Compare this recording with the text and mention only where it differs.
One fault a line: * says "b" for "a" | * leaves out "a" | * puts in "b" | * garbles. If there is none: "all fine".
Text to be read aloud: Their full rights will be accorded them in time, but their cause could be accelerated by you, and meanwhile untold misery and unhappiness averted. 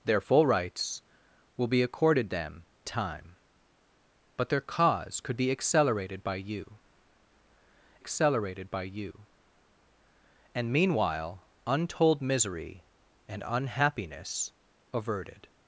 * leaves out "in"
* puts in "accelerated by you"